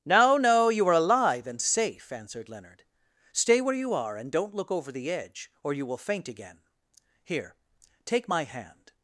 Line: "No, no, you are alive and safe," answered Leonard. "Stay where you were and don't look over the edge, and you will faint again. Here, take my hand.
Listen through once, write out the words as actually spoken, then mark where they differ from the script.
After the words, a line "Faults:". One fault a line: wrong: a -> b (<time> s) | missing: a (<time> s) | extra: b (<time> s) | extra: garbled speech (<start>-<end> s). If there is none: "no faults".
"No, no, you are alive and safe," answered Leonard. "Stay where you are and don't look over the edge, or you will faint again. Here, take my hand.
Faults:
wrong: were -> are (3.9 s)
wrong: and -> or (5.6 s)